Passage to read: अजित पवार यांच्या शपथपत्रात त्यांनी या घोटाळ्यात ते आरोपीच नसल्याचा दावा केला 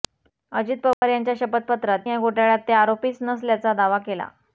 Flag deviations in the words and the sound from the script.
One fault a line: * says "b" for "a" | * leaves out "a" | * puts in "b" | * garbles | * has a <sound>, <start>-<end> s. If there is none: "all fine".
* has a dropout, 0.9-1.0 s
* leaves out "त्यांनी"